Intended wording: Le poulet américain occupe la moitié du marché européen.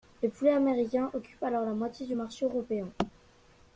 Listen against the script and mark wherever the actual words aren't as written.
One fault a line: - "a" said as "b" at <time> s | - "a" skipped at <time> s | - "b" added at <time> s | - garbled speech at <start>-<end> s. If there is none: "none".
- "alors" added at 1.4 s